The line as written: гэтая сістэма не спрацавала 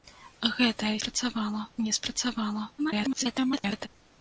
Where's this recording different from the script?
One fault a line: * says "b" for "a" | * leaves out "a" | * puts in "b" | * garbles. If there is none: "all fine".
* says "спрацавала" for "сістэма"
* garbles